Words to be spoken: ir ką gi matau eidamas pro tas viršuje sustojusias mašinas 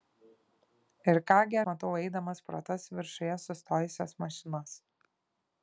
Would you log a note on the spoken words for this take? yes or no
no